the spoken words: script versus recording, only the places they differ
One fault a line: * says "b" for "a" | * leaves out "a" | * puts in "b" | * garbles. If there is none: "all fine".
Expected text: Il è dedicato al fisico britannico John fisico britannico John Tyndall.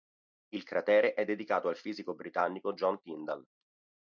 * puts in "cratere"
* leaves out "fisico britannico John"